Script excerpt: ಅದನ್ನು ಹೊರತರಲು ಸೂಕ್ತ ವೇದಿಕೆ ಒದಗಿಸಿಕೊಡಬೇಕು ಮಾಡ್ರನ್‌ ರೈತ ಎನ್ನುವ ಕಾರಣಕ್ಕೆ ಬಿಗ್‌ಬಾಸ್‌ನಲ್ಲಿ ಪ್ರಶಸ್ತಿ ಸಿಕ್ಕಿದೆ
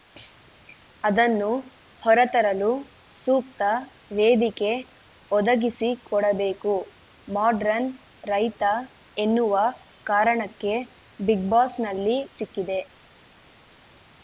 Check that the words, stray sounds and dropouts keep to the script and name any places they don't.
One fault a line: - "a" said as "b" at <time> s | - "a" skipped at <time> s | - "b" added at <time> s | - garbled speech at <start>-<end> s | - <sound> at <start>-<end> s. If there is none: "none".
- "ಪ್ರಶಸ್ತಿ" skipped at 12.2 s